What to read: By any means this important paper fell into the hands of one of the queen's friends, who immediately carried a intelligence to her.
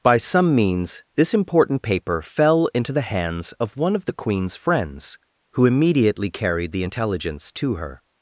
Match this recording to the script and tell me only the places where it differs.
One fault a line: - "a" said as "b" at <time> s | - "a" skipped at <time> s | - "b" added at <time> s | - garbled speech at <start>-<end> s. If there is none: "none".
- "any" said as "some" at 0.2 s
- "a" said as "the" at 6.7 s